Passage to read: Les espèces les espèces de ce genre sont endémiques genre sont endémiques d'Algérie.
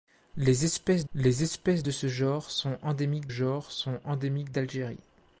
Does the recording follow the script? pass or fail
pass